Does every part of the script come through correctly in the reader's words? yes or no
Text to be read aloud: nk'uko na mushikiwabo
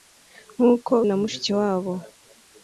yes